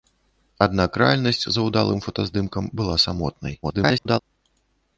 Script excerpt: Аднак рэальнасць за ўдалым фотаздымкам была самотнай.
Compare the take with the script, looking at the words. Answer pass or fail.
fail